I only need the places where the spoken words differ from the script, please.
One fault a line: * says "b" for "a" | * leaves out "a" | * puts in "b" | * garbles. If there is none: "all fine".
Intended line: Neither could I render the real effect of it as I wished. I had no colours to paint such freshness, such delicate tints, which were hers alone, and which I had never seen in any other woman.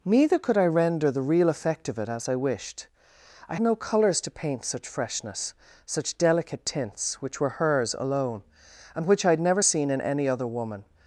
* leaves out "had"